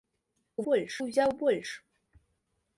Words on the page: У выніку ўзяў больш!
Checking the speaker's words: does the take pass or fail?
fail